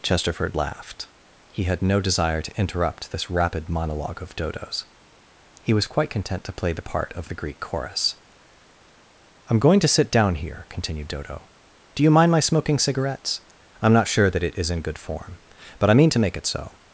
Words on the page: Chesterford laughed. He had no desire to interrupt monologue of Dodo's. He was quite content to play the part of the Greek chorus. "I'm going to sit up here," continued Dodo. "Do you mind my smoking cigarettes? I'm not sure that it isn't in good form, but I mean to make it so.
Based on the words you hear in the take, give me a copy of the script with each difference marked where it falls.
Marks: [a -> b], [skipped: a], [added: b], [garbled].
Chesterford laughed. He had no desire to interrupt [added: this rapid] monologue of Dodo's. He was quite content to play the part of the Greek chorus. "I'm going to sit [up -> down] here," continued Dodo. "Do you mind my smoking cigarettes? I'm not sure that it [isn't -> is] in good form, but I mean to make it so.